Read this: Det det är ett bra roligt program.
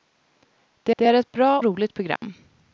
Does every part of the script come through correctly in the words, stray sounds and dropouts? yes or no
no